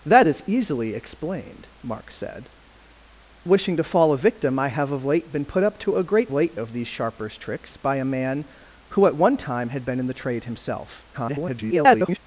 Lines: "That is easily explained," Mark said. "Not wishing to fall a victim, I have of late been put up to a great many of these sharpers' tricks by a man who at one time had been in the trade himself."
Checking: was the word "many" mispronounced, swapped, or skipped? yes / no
yes